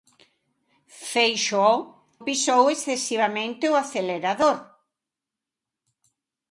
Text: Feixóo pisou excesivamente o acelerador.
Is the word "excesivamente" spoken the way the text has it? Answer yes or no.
yes